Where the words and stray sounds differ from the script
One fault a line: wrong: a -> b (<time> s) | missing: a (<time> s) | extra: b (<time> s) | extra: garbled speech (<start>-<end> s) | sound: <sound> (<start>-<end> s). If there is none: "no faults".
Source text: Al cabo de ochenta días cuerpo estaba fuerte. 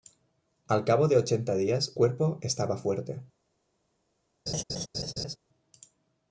sound: laugh (4.5-5.4 s)